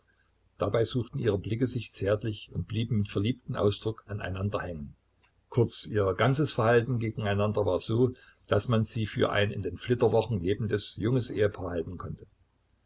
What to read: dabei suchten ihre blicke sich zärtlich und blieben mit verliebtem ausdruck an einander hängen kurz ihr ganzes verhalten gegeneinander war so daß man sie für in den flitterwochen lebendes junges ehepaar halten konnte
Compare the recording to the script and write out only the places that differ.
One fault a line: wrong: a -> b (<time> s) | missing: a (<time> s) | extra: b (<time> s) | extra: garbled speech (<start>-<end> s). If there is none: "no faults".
extra: ein (9.3 s)